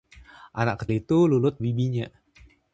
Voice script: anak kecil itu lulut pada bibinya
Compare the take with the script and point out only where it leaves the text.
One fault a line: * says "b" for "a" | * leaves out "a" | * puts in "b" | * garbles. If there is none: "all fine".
* leaves out "kecil"
* leaves out "pada"